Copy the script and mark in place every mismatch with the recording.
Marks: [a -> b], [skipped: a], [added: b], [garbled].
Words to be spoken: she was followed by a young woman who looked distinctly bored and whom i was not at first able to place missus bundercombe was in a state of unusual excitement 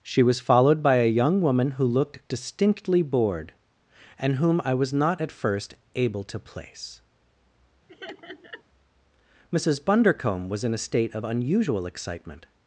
she was followed by a young woman who looked distinctly bored and whom i was not at first able to place missus bundercombe was in a state of unusual excitement